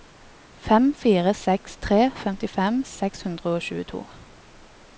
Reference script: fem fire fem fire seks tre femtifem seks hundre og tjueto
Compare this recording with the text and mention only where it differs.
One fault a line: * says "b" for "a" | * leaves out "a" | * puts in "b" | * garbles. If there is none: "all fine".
* leaves out "fem fire"